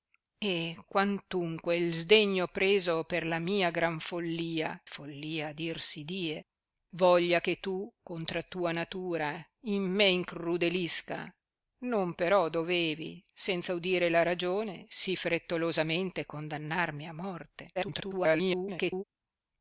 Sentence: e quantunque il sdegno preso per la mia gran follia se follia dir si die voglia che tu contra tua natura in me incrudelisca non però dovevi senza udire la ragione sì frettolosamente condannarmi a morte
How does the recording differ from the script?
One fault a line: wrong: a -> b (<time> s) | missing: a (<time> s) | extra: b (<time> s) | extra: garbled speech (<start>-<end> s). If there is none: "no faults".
missing: se (4.8 s)
extra: garbled speech (17.8-19.0 s)